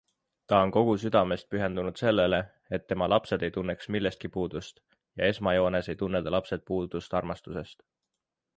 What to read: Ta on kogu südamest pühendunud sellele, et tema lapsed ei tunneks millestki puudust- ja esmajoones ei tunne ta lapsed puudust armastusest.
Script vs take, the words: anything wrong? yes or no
no